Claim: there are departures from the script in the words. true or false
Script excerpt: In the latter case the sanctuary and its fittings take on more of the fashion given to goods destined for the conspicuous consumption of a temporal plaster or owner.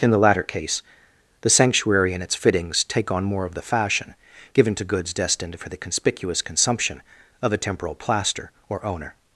false